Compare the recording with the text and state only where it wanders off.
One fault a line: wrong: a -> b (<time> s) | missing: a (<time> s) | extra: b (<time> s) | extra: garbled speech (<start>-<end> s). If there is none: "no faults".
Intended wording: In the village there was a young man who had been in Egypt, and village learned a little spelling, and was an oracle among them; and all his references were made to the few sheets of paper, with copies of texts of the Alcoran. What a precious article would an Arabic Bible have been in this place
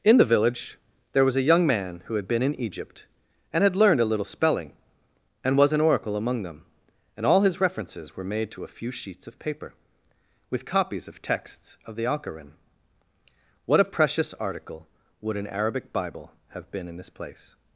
wrong: village -> had (3.6 s)
wrong: the -> a (8.6 s)